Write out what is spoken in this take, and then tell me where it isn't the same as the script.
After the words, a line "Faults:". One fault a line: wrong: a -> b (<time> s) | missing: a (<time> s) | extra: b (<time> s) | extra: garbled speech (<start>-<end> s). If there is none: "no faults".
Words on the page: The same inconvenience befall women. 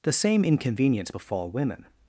The same inconvenience befall women.
Faults:
no faults